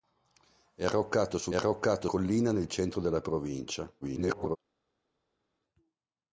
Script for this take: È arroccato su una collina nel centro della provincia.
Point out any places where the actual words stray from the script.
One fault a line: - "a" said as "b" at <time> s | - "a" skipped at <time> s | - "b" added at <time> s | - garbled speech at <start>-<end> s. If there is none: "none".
- "una" said as "arroccato" at 1.5 s
- garbled speech at 4.0-4.6 s